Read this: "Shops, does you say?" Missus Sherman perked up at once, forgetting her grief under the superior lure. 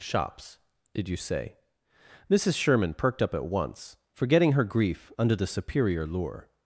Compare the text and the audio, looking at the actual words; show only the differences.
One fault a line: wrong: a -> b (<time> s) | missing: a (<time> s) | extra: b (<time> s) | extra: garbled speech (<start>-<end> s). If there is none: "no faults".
wrong: does -> did (0.9 s)